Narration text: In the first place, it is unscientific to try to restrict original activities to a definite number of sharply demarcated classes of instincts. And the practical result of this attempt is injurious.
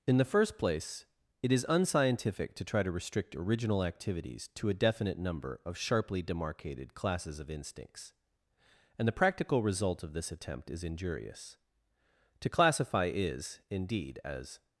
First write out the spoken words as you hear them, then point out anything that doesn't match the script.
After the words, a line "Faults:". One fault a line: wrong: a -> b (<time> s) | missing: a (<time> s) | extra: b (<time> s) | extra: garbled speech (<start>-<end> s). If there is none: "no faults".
In the first place, it is unscientific to try to restrict original activities to a definite number of sharply demarcated classes of instincts. And the practical result of this attempt is injurious. To classify is, indeed, as
Faults:
extra: To classify is indeed as (12.4 s)